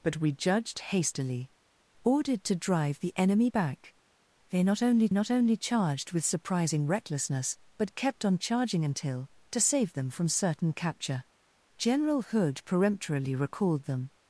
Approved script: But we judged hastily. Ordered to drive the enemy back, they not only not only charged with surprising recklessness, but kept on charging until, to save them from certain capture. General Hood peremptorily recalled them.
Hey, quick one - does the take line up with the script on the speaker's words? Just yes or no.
yes